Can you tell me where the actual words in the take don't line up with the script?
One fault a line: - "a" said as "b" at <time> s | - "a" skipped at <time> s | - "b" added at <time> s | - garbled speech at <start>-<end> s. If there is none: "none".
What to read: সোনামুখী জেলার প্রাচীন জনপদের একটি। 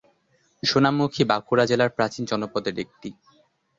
- "বাঁকুড়া" added at 1.2 s